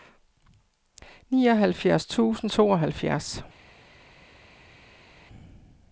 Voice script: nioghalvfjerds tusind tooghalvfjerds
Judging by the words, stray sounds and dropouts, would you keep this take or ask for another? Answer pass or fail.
pass